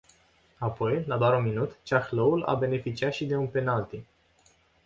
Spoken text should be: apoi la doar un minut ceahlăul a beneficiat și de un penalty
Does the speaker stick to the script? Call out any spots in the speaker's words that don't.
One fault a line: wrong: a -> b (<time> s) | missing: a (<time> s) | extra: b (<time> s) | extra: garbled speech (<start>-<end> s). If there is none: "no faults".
no faults